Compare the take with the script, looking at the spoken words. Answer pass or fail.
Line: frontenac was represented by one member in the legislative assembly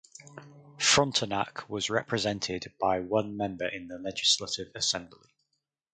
pass